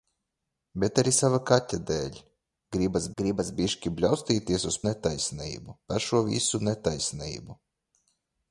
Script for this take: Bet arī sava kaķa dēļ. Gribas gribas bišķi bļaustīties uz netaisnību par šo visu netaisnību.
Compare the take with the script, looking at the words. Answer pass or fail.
pass